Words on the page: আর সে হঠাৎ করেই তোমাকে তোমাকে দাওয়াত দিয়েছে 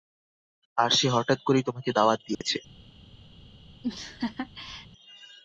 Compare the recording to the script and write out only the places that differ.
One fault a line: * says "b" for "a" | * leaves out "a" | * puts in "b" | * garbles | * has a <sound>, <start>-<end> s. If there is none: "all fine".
* leaves out "তোমাকে"
* has a dropout, 2.3-2.4 s
* has a laugh, 3.8-4.9 s